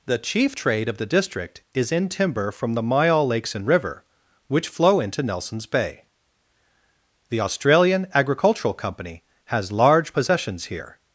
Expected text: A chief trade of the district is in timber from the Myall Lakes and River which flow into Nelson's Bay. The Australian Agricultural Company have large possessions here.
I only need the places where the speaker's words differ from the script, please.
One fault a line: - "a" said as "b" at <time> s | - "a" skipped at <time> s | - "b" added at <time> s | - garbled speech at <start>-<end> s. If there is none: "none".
- "A" said as "The" at 0.1 s
- "have" said as "has" at 9.5 s